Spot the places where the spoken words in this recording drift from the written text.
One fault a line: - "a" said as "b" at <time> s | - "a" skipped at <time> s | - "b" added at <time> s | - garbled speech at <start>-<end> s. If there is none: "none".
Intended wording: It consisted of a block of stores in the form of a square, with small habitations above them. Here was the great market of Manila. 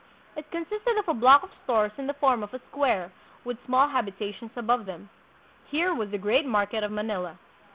none